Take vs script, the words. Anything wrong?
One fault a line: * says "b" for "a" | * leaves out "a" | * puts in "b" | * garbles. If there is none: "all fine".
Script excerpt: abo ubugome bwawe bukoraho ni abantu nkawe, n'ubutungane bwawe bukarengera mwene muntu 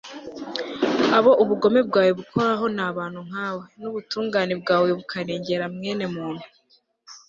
all fine